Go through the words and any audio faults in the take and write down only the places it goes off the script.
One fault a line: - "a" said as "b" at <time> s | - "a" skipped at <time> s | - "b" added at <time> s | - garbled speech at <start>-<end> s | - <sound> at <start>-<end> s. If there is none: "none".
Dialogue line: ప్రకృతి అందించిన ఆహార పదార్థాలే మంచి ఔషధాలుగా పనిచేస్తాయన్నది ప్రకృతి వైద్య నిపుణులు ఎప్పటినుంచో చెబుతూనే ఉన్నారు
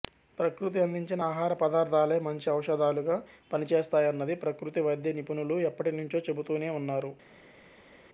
none